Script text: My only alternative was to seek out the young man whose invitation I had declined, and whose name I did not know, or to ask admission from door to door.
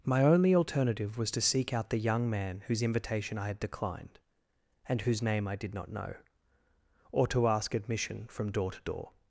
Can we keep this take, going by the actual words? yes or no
yes